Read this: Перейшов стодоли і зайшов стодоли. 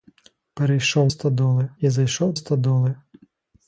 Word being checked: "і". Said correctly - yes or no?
yes